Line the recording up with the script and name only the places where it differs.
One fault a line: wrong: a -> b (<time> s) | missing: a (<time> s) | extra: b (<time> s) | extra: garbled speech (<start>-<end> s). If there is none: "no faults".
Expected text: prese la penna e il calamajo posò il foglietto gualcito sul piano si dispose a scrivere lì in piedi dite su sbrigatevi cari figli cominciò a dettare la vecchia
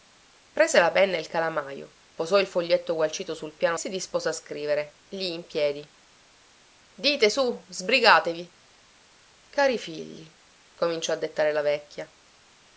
no faults